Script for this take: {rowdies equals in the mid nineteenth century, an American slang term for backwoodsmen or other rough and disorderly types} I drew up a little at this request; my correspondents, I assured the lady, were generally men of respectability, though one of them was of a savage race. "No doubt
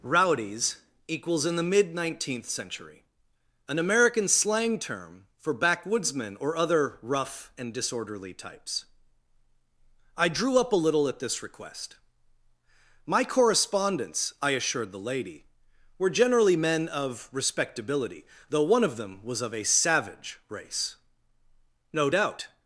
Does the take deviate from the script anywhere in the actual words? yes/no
no